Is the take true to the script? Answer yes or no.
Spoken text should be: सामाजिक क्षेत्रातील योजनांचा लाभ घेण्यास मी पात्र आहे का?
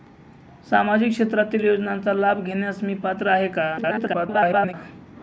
no